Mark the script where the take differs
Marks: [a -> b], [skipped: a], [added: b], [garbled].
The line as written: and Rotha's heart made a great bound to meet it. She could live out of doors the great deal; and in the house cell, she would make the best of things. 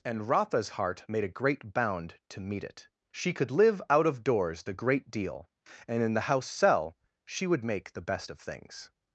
and Rotha's heart made a great bound to meet it. She could live out of doors the great deal; and in the house cell, she would make the best of things.